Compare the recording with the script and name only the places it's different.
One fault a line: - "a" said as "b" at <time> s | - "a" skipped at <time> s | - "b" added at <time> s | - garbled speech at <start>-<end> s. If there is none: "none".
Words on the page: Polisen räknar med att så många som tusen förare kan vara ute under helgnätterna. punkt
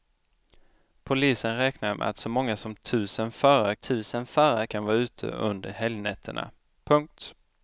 - "tusen förare" added at 3.7 s